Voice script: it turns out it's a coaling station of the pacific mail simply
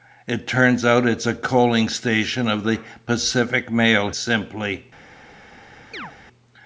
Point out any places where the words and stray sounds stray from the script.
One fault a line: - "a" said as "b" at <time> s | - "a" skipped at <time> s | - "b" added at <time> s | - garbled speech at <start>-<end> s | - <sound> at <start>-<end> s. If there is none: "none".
- chirp at 5.9-6.1 s